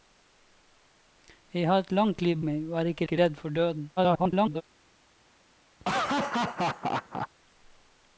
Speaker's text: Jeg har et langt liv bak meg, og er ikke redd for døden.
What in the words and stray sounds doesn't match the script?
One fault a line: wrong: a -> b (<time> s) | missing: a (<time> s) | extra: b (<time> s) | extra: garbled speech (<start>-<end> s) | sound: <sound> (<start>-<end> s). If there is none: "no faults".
missing: bak (2.4 s)
extra: ikke (3.0 s)
extra: garbled speech (4.0-4.6 s)
sound: laugh (5.8-7.3 s)